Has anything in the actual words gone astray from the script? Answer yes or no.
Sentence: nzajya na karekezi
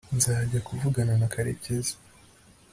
yes